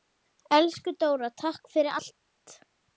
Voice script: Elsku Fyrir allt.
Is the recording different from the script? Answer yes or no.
yes